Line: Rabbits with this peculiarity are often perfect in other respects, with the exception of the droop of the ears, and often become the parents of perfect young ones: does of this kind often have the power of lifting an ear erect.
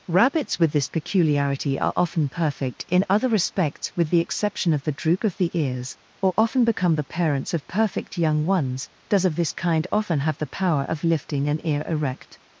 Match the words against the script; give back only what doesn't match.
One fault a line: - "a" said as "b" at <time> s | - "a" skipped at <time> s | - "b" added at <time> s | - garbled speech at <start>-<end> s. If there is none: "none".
- "and" said as "or" at 6.2 s